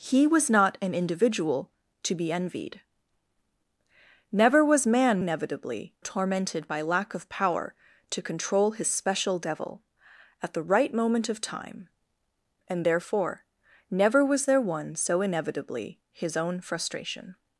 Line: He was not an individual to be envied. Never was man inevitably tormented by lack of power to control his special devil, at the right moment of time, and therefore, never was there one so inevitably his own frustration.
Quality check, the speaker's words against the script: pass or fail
pass